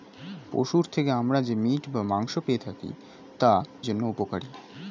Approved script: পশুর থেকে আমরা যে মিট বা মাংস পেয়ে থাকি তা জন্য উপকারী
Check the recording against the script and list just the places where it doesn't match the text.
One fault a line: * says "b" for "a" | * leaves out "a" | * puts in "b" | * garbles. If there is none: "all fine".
all fine